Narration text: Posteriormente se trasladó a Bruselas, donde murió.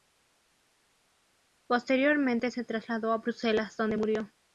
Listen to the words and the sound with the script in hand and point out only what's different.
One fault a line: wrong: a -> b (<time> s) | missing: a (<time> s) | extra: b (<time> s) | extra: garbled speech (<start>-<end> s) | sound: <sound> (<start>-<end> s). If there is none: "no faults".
no faults